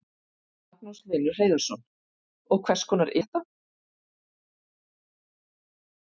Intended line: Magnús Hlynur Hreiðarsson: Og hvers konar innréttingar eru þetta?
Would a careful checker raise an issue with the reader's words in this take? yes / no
yes